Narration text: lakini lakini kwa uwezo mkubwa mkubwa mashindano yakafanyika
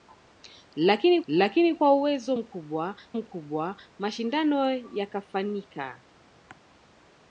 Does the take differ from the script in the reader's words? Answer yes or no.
no